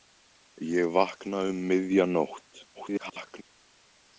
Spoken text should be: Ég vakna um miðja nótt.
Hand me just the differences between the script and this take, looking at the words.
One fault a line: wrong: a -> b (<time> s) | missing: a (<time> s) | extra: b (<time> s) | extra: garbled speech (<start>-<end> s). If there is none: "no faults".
extra: garbled speech (2.7-3.4 s)